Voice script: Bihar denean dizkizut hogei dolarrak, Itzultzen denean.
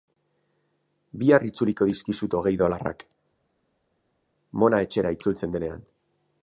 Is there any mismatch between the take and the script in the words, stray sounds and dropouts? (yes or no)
yes